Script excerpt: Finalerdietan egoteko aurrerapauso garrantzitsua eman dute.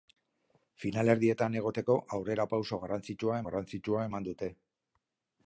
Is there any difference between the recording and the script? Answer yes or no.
yes